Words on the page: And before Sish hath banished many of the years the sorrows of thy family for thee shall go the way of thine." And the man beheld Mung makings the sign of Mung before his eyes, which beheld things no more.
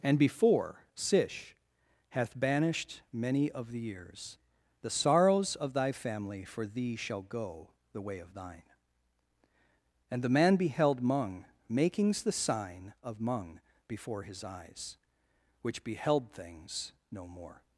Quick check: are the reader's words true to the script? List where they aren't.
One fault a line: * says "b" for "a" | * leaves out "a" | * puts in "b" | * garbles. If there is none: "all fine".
all fine